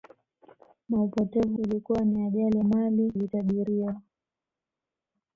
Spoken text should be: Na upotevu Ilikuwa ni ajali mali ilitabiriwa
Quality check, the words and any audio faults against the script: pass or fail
pass